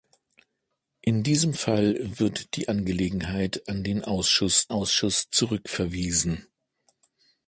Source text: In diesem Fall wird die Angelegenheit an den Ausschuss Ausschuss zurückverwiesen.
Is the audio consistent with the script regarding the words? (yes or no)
yes